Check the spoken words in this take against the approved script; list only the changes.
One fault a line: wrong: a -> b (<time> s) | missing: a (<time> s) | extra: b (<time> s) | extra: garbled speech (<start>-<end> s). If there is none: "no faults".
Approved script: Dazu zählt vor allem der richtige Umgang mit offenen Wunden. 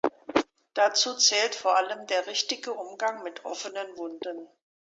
no faults